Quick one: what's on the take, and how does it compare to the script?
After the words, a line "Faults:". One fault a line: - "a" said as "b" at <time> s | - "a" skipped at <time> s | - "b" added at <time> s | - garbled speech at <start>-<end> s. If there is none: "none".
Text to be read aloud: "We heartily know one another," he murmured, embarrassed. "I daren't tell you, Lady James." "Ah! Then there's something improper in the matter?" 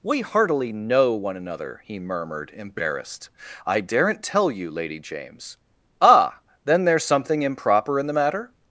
"We heartily know one another," he murmured, embarrassed. "I daren't tell you, Lady James." "Ah! Then there's something improper in the matter?"
Faults:
none